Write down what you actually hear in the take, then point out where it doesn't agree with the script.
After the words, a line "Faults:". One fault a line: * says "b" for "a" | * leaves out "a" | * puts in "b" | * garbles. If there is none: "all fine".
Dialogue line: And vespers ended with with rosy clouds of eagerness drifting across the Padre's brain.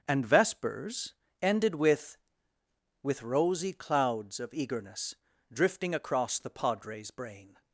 And vespers ended with with rosy clouds of eagerness drifting across the Padre's brain.
Faults:
all fine